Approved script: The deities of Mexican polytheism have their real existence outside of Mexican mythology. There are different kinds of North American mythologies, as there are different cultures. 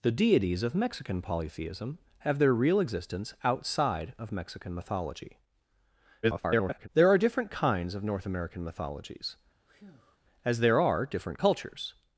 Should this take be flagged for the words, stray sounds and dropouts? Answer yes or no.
yes